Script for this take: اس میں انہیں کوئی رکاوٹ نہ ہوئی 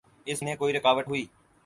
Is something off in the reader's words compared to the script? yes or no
yes